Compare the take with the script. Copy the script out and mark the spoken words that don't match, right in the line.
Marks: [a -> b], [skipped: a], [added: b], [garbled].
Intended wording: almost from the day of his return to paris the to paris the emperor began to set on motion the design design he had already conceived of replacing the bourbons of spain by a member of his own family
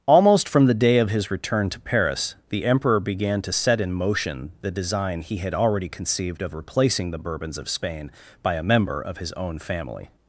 almost from the day of his return to paris the [skipped: to paris the] emperor began to set [on -> in] motion the design [skipped: design] he had already conceived of replacing the bourbons of spain by a member of his own family